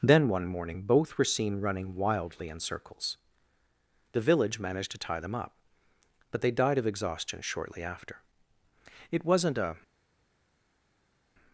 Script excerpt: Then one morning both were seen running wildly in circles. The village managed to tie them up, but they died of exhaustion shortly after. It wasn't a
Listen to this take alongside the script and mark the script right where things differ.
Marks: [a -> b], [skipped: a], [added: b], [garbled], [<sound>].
Then one morning both were seen running wildly in circles. The village managed to tie them up, but they died of exhaustion shortly after. It wasn't a